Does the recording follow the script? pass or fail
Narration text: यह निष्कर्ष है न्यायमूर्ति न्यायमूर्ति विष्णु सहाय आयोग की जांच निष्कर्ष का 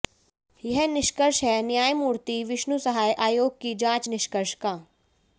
fail